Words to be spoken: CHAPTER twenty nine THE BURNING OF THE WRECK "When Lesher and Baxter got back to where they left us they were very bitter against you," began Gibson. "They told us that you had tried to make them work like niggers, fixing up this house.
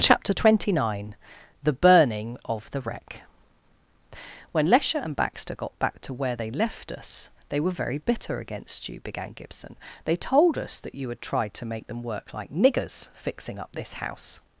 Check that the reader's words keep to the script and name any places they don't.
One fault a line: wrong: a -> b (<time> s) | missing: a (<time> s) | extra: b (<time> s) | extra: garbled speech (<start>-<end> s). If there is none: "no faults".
no faults